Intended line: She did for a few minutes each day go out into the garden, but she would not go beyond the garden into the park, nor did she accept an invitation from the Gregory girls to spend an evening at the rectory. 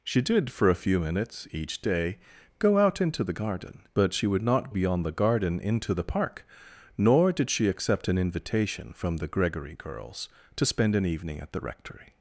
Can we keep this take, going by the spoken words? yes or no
no